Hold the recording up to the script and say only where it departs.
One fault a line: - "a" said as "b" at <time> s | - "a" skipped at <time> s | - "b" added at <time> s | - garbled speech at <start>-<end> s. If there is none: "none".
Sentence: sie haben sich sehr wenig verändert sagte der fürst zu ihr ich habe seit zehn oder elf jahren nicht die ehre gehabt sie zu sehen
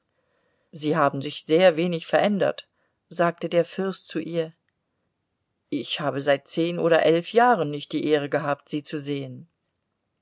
none